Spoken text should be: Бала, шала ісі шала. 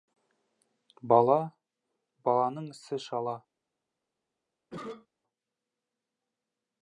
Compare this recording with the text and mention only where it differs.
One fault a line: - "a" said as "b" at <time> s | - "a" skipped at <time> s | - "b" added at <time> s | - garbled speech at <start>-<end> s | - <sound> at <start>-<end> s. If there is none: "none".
- "шала" said as "баланың" at 2.3 s
- cough at 4.7-5.1 s